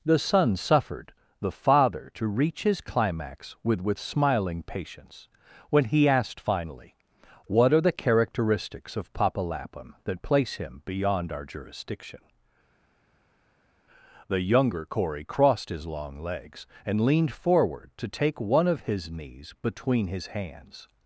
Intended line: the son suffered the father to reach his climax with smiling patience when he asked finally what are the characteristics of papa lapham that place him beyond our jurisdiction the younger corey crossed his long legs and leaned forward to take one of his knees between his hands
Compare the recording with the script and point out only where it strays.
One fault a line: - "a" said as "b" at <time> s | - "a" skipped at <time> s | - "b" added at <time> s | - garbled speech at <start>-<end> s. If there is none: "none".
- "with" added at 3.8 s